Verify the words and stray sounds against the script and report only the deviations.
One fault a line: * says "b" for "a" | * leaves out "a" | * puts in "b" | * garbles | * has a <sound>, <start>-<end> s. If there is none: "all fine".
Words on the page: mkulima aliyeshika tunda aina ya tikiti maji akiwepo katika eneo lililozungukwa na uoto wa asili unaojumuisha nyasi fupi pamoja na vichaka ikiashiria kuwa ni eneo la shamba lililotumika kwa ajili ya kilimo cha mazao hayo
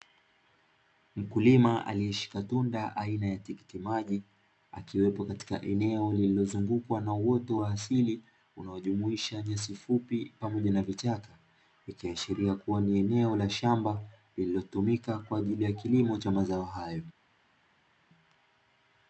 all fine